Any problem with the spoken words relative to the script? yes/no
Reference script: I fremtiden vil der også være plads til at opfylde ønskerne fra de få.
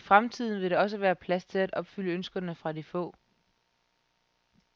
no